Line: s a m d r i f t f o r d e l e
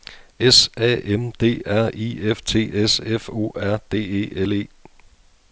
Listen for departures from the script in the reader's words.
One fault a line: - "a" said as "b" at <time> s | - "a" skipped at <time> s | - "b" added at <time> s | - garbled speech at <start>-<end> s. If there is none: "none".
- "s" added at 2.7 s